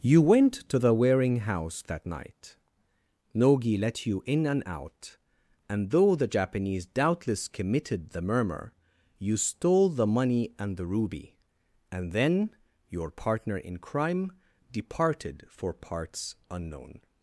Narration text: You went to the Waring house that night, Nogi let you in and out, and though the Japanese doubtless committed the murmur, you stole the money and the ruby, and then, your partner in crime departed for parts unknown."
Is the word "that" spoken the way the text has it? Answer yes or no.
yes